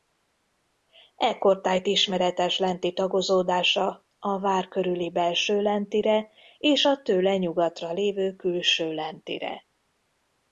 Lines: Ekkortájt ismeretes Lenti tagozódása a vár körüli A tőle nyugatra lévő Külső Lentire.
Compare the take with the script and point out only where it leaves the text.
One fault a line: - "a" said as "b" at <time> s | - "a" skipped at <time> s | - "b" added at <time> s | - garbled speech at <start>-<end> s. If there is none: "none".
- "Belső Lentire és" added at 5.1 s